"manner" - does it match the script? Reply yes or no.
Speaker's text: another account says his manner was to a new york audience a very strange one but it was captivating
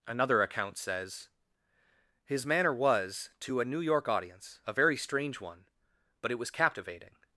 yes